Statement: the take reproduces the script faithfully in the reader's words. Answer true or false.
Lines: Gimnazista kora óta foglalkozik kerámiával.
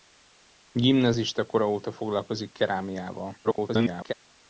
false